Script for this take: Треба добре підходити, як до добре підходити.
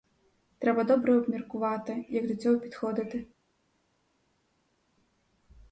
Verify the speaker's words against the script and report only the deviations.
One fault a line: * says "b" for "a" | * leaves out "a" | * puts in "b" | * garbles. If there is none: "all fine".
* says "обміркувати" for "підходити"
* says "цього" for "добре"